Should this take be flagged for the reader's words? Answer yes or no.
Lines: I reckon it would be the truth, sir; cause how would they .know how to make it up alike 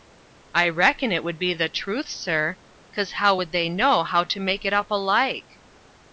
no